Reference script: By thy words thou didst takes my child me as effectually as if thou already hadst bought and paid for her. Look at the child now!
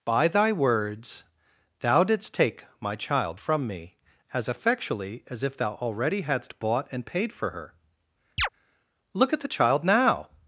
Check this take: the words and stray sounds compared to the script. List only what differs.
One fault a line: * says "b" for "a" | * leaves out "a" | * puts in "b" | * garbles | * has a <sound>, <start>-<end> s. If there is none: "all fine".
* says "take" for "takes"
* puts in "from"
* has a chirp, 8.4-8.5 s